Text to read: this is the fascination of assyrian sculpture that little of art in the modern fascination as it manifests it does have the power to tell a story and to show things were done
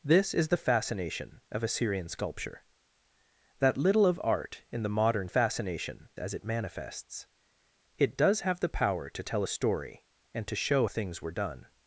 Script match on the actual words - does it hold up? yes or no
yes